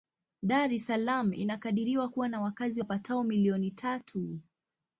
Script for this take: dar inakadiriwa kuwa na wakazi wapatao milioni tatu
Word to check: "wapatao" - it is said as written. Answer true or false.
true